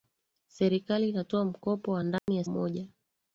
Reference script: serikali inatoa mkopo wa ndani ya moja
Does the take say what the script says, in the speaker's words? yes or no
yes